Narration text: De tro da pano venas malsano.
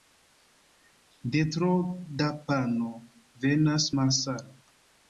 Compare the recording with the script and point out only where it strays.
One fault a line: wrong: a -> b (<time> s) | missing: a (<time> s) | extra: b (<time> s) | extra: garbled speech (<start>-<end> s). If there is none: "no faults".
no faults